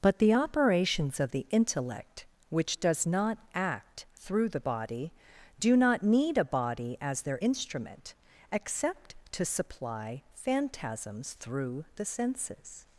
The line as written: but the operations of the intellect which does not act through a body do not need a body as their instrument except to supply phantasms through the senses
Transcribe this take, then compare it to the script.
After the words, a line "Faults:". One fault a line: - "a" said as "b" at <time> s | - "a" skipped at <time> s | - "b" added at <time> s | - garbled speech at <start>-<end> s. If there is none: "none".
but the operations of the intellect which does not act through the body do not need a body as their instrument except to supply phantasms through the senses
Faults:
- "a" said as "the" at 4.5 s